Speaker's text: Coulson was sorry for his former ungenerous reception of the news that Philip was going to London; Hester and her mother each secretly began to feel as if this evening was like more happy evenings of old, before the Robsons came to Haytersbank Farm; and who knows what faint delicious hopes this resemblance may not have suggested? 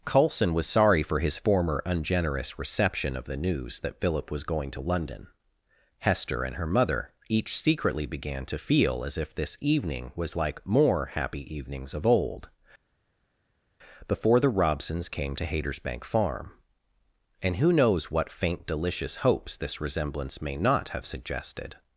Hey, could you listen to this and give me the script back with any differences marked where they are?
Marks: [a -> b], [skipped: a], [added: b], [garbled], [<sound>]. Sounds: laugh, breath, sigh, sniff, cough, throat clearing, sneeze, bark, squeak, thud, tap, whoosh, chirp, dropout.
Coulson was sorry for his former ungenerous reception of the news that Philip was going to London; Hester and her mother each secretly began to feel as if this evening was like more happy evenings of old, before the Robsons came to Haytersbank Farm; and who knows what faint delicious hopes this resemblance may not have suggested?